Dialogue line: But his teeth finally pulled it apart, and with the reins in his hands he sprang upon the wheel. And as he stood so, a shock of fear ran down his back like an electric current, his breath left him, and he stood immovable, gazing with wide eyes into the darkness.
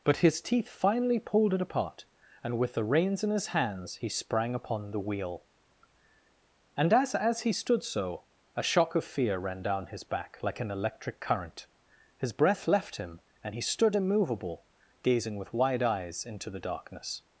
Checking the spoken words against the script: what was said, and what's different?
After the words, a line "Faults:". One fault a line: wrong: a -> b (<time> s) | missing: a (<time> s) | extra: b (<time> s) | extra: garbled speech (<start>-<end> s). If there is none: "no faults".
But his teeth finally pulled it apart, and with the reins in his hands he sprang upon the wheel. And as as he stood so, a shock of fear ran down his back like an electric current, his breath left him, and he stood immovable, gazing with wide eyes into the darkness.
Faults:
extra: as (7.1 s)